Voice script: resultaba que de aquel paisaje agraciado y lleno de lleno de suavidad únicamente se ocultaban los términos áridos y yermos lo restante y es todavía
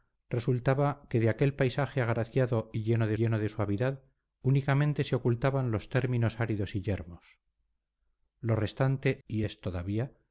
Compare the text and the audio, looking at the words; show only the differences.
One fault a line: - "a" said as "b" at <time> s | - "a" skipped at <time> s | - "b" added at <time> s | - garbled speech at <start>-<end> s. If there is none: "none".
none